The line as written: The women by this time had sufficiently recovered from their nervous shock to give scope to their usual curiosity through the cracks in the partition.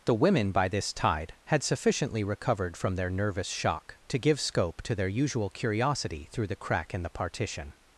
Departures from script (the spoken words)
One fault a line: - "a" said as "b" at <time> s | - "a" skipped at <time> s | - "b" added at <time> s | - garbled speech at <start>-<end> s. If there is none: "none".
- "time" said as "tide" at 0.9 s
- "cracks" said as "crack" at 6.5 s